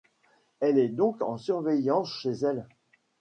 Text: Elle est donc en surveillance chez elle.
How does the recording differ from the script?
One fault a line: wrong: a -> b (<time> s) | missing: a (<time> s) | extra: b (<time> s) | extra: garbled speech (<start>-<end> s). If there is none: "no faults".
no faults